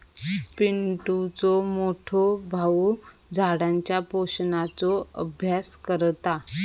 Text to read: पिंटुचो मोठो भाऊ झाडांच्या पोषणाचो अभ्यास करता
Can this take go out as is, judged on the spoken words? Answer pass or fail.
pass